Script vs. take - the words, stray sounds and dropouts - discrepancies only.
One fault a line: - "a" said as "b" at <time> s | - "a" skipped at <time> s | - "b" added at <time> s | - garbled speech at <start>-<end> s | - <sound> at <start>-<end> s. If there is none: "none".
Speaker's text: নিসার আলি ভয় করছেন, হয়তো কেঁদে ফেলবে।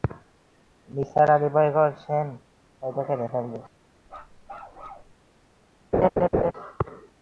- bark at 4.1-5.1 s
- laugh at 5.9-6.5 s